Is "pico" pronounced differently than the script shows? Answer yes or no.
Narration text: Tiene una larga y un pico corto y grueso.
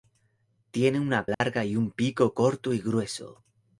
no